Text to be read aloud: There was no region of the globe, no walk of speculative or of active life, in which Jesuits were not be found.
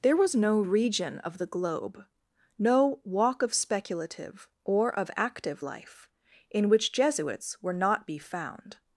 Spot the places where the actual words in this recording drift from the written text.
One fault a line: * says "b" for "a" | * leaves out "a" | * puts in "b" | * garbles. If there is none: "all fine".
all fine